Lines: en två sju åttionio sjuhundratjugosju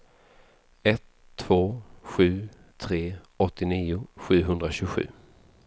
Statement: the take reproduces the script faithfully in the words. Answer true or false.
false